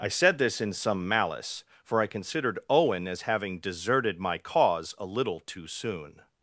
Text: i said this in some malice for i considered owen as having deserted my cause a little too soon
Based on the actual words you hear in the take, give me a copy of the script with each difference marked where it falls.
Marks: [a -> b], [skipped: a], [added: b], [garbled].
i said this in some malice for i considered owen as having deserted my cause a little too soon